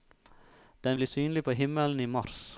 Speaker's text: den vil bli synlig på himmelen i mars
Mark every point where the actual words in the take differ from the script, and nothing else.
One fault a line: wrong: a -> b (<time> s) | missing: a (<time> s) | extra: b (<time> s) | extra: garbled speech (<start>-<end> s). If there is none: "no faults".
missing: vil (1.0 s)